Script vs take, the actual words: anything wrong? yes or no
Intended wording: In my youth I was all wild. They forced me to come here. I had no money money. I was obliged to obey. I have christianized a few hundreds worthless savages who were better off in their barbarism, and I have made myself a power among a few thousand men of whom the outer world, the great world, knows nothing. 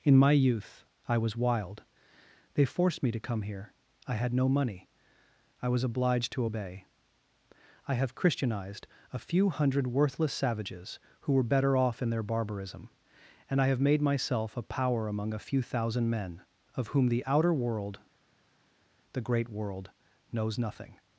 yes